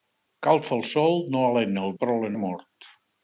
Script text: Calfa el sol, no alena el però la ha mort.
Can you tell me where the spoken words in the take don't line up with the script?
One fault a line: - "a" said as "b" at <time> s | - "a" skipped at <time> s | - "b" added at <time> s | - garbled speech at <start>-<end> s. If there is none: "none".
none